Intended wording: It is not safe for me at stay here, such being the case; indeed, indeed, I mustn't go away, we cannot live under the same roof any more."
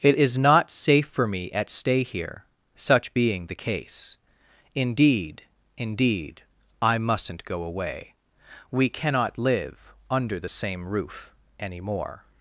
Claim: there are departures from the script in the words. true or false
false